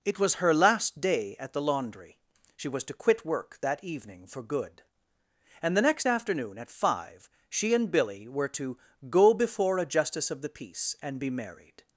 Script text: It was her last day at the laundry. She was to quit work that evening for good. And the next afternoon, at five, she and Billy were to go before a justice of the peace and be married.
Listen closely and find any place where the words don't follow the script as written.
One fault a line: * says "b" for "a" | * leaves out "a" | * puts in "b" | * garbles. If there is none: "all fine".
all fine